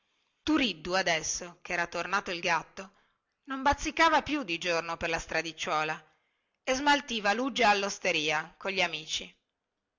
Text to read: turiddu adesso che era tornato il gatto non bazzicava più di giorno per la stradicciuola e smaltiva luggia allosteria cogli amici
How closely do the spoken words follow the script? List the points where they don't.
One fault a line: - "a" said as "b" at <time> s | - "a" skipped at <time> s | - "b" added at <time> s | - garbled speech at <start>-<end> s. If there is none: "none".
none